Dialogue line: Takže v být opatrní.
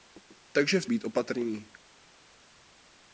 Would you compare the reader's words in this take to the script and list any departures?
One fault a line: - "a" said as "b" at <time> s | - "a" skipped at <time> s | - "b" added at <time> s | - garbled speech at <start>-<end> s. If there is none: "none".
none